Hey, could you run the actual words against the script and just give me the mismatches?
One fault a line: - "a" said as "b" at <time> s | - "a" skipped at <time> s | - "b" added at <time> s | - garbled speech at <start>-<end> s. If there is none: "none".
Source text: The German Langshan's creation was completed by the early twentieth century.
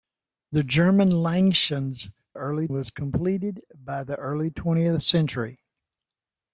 - "creation" said as "early" at 2.3 s